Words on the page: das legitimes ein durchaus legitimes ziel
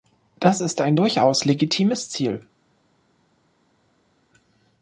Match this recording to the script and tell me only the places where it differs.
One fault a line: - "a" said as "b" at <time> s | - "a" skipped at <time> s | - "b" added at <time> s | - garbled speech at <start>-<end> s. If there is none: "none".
- "legitimes" said as "ist" at 0.6 s